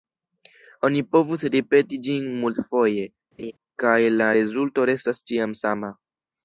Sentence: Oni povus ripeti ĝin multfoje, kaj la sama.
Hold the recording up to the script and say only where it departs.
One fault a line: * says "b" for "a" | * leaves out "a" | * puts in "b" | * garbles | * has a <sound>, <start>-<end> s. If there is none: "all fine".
* has a laugh, 3.4-3.5 s
* puts in "rezulto restas ĉiam"